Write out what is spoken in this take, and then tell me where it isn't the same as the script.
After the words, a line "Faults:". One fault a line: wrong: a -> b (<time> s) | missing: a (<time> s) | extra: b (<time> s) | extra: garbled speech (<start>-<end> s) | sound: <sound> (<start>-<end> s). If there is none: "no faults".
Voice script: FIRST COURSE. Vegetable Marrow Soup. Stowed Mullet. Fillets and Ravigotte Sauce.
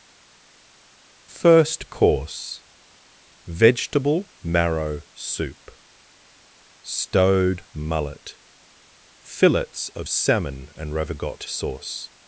FIRST COURSE. Vegetable Marrow Soup. Stowed Mullet. Fillets of Salmon and Ravigotte Sauce.
Faults:
extra: of Salmon (9.9 s)